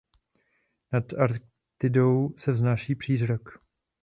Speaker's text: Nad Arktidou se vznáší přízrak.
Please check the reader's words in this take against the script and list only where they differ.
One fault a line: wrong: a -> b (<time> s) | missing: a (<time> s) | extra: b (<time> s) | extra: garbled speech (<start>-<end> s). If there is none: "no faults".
no faults